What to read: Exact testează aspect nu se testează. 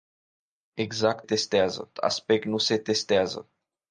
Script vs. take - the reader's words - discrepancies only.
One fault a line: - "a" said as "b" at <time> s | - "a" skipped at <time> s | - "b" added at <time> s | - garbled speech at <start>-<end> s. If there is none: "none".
none